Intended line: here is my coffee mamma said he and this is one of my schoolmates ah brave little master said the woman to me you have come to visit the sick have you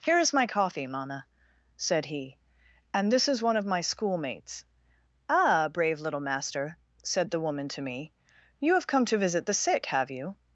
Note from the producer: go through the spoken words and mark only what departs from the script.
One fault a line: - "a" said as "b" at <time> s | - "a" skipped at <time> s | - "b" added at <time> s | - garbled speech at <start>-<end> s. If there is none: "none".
none